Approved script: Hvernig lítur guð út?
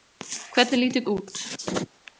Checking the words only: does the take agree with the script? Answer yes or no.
no